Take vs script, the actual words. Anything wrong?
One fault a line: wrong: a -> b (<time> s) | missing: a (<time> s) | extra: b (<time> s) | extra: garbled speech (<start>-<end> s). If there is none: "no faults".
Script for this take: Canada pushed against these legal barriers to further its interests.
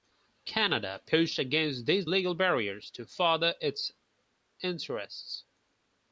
no faults